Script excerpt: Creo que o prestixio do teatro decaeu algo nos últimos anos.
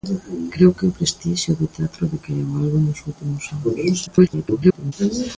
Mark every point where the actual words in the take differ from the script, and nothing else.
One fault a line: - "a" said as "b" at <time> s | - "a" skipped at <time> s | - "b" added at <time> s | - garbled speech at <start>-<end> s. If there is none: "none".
- garbled speech at 4.1-4.9 s